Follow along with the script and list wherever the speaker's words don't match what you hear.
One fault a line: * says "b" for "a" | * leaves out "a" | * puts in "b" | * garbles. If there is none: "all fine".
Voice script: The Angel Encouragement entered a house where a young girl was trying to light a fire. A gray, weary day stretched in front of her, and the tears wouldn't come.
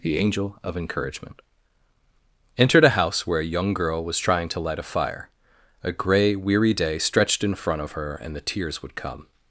* puts in "of"
* says "would" for "wouldn't"